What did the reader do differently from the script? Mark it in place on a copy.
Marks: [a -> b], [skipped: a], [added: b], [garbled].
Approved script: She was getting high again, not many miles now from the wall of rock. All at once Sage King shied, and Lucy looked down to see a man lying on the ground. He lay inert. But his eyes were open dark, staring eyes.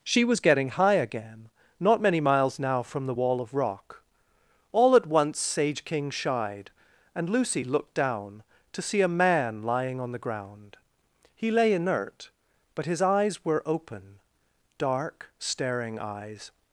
She was getting high again, not many miles now from the wall of rock. All at once Sage King shied, and Lucy looked down to see a man lying on the ground. He lay inert. But his eyes were open dark, staring eyes.